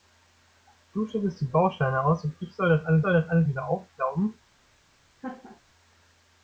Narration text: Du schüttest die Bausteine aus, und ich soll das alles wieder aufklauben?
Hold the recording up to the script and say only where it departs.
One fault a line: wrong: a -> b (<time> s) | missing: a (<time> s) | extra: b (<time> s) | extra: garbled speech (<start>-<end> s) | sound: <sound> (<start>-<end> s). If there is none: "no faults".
extra: soll das alles (3.0 s)
sound: laugh (5.2-5.6 s)